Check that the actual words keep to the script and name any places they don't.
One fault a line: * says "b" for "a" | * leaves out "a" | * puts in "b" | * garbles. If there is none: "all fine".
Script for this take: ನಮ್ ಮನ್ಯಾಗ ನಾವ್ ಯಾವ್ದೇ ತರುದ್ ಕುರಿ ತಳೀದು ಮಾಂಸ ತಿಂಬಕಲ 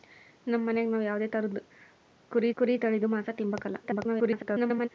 * puts in "ಕುರಿ"
* garbles